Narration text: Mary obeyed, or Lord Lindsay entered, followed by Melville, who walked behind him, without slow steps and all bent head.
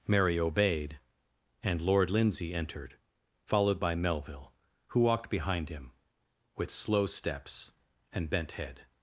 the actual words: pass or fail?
fail